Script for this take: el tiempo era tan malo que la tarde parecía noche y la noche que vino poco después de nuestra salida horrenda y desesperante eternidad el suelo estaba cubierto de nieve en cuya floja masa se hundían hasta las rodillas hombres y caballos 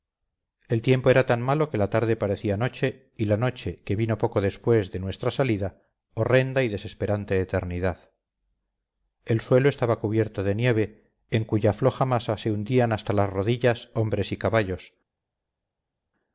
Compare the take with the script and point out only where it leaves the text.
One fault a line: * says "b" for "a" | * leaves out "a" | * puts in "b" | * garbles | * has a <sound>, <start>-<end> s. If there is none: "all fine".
all fine